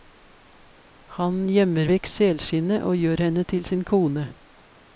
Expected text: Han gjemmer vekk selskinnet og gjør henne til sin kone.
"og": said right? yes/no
yes